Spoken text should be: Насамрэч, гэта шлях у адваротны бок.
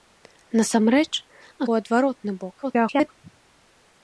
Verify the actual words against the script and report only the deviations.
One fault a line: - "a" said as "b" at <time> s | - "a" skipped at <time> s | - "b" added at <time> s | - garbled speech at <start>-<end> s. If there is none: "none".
- "гэта шлях" skipped at 1.1 s
- garbled speech at 2.6-3.1 s